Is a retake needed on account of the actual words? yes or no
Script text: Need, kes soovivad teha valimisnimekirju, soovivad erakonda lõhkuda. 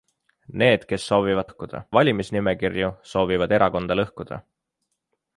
yes